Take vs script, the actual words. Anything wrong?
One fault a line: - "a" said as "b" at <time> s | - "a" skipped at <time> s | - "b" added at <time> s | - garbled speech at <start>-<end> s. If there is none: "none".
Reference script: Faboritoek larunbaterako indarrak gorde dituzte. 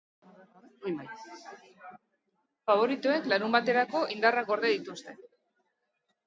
none